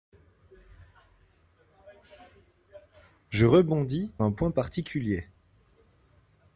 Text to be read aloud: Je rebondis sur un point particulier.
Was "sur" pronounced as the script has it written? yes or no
no